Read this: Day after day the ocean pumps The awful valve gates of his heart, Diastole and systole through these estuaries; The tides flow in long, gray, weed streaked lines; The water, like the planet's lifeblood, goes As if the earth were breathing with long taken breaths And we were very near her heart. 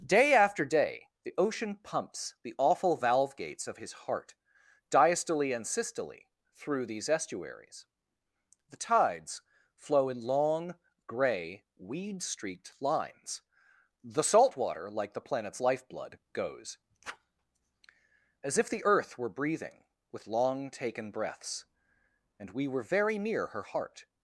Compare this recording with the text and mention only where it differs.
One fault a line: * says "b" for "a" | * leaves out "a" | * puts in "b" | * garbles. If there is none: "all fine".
* puts in "salt"